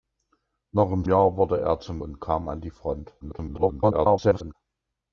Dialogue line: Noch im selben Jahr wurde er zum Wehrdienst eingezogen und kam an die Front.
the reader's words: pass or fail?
fail